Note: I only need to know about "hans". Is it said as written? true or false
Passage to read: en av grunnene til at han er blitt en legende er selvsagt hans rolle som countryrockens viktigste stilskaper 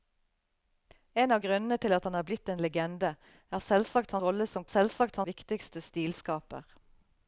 false